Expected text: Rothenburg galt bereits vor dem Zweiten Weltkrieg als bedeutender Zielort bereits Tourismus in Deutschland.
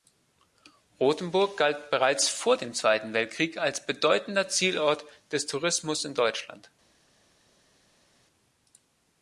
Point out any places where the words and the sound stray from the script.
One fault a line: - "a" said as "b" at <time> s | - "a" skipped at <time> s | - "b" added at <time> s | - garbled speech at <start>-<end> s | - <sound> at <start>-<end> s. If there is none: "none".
- "bereits" said as "des" at 5.3 s